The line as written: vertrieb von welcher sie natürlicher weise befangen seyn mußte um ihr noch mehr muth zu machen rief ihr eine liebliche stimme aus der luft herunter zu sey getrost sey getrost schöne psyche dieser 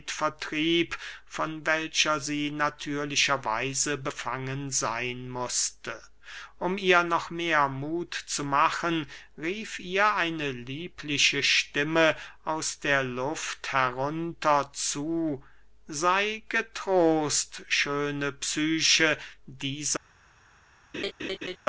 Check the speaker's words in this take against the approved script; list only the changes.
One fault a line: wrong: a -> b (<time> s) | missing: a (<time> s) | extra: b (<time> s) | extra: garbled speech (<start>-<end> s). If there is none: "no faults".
missing: sey getrost (17.6 s)